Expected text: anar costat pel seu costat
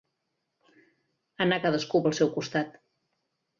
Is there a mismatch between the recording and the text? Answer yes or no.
yes